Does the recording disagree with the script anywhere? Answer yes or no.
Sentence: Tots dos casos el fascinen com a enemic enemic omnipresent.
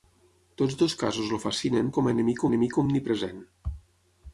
no